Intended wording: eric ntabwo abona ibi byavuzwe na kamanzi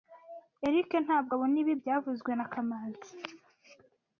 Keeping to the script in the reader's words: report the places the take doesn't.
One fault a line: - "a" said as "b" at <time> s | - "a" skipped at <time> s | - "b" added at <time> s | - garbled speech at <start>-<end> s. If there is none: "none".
none